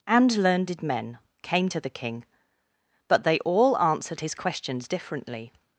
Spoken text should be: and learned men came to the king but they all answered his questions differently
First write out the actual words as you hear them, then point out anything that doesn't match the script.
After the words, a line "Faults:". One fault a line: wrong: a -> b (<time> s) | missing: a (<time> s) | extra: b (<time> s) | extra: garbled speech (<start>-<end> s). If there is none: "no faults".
and learned men came to the king but they all answered his questions differently
Faults:
no faults